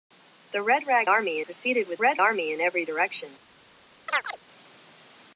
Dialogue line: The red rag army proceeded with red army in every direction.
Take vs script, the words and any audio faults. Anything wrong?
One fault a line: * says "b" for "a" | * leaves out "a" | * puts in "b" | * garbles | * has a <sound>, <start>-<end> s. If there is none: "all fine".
* has a chirp, 4.1-4.4 s